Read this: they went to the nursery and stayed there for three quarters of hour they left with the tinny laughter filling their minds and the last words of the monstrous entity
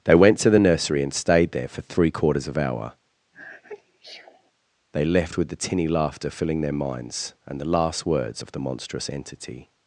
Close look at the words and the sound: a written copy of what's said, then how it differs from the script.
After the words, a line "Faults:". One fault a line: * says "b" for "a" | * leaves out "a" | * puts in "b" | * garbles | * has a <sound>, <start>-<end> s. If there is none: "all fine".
they went to the nursery and stayed there for three quarters of hour they left with the tinny laughter filling their minds and the last words of the monstrous entity
Faults:
* has a sneeze, 3.3-4.5 s